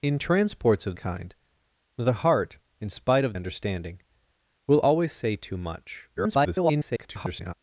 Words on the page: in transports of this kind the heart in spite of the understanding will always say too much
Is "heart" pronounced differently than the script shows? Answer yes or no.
no